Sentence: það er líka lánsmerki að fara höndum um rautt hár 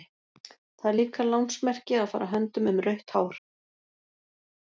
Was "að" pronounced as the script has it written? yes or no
yes